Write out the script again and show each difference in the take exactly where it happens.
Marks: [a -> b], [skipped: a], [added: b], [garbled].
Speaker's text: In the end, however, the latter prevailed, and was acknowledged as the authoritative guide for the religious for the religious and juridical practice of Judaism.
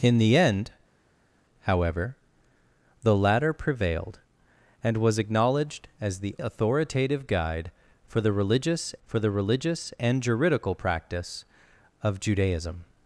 In the end, however, the latter prevailed, and was acknowledged as the authoritative guide for the religious for the religious and juridical practice of Judaism.